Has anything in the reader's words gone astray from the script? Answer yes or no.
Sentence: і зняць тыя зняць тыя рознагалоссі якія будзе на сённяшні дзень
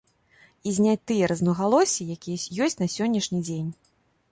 yes